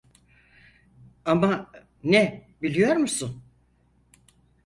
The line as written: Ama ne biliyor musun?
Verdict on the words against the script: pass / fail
pass